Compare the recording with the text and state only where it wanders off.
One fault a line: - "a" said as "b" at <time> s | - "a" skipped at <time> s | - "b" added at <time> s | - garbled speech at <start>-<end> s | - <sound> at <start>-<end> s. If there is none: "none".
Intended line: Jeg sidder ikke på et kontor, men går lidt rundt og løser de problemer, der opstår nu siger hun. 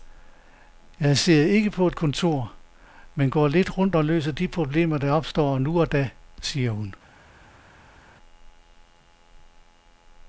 - "og da" added at 5.8 s